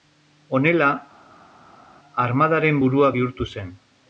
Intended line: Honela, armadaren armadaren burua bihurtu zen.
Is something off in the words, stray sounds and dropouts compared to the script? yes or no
yes